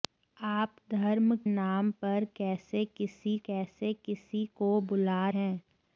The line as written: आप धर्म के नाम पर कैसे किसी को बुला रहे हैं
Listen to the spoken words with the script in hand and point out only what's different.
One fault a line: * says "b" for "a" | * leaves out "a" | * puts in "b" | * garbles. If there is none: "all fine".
* leaves out "के"
* puts in "कैसे किसी"
* leaves out "रहे"